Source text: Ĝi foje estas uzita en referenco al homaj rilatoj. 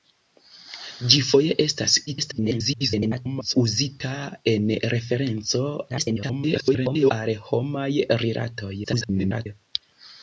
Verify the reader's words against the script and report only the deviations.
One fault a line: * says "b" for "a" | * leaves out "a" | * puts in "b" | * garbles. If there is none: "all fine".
* garbles
* garbles
* garbles